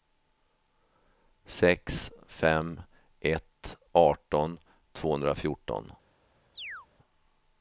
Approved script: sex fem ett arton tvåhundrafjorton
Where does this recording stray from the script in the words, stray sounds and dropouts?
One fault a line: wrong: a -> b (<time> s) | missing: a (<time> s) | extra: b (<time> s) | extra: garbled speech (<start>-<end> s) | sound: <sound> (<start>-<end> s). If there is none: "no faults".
sound: chirp (6.5-6.9 s)